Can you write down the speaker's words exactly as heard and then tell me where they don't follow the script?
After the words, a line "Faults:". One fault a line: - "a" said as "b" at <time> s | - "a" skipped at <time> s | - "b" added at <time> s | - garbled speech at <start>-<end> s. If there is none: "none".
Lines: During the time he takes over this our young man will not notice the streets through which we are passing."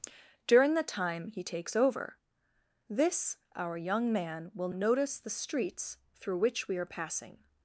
During the time he takes over this our young man will notice the streets through which we are passing."
Faults:
- "not" skipped at 4.7 s